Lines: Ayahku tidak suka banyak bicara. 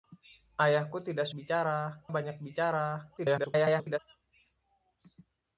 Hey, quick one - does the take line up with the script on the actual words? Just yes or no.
no